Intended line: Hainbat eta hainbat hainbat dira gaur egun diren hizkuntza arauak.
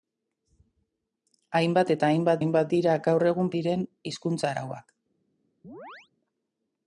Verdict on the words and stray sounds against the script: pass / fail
fail